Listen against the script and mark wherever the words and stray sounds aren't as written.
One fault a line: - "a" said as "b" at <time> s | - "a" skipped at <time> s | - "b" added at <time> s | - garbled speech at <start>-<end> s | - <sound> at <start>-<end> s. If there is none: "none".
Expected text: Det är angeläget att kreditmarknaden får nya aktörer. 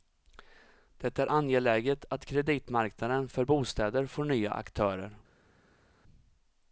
- "för bostäder" added at 3.3 s